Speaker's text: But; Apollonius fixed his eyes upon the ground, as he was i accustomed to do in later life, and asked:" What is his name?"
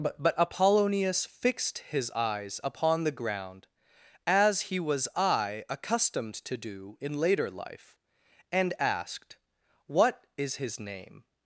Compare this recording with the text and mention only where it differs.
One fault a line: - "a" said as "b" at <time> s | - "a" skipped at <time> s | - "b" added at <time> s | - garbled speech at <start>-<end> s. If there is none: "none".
- "but" added at 0.2 s